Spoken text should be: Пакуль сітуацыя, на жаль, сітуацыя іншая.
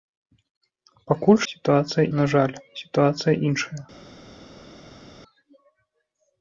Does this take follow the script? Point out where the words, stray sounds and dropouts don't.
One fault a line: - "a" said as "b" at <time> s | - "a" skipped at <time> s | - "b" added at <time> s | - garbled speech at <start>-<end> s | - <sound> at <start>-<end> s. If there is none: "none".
none